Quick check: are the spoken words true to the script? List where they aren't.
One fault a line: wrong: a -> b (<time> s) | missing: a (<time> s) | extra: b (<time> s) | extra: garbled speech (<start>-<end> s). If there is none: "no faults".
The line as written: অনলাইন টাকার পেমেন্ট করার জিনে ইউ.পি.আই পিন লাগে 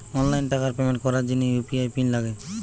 no faults